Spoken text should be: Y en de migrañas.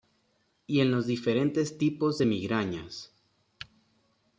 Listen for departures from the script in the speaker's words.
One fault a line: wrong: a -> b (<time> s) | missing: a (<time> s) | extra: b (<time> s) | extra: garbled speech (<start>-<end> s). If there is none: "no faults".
extra: los diferentes tipos (0.9 s)